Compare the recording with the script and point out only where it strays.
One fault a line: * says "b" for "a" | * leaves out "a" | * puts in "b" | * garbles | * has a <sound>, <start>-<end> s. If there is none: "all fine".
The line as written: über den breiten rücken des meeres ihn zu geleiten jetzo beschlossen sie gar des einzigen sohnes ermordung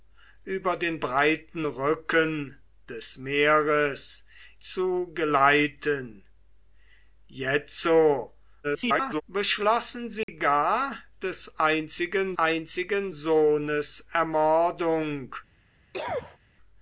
* leaves out "ihn"
* garbles
* has a dropout, 10.2-10.3 s
* puts in "einzigen"
* has a cough, 15.9-16.4 s